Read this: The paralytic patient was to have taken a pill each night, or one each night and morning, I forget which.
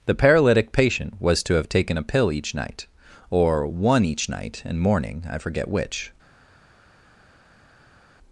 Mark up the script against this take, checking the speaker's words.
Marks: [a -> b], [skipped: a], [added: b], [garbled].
The paralytic patient was to have taken a pill each night, or one each night and morning, I forget which.